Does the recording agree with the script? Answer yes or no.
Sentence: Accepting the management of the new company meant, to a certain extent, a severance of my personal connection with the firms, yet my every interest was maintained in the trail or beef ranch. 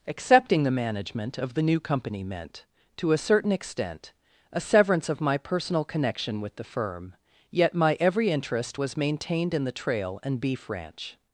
no